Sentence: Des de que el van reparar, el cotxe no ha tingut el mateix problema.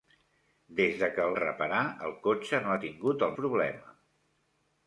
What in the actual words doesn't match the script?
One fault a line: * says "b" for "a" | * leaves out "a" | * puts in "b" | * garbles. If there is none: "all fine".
* leaves out "van"
* leaves out "mateix"